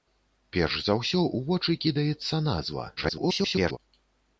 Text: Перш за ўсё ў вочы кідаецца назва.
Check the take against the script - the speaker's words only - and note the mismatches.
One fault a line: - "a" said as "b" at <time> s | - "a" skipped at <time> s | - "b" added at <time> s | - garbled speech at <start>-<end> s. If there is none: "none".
- garbled speech at 3.0-3.8 s